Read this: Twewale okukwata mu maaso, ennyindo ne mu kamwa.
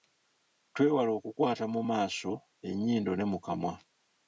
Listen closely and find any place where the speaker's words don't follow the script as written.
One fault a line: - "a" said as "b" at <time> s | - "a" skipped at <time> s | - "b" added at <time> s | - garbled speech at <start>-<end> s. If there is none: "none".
none